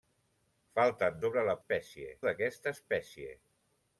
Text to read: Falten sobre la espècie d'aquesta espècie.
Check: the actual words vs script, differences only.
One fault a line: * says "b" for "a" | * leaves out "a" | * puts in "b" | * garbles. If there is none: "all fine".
all fine